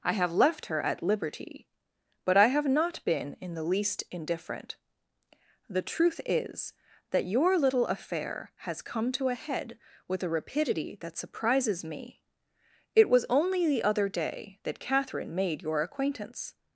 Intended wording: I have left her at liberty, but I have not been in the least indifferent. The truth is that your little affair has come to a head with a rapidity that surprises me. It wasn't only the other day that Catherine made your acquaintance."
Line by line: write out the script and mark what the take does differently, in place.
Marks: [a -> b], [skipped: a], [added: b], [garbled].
I have left her at liberty, but I have not been in the least indifferent. The truth is that your little affair has come to a head with a rapidity that surprises me. It [wasn't -> was] only the other day that Catherine made your acquaintance."